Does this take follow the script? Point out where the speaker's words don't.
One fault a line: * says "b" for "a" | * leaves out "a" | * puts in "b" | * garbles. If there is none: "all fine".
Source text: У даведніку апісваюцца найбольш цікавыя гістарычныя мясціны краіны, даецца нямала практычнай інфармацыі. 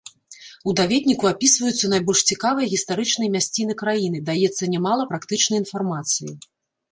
all fine